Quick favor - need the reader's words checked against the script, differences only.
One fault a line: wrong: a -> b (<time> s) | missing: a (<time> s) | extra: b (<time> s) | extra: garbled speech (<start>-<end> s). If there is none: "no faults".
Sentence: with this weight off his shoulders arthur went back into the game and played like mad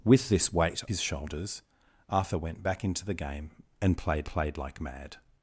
missing: off (0.8 s)
extra: played (4.3 s)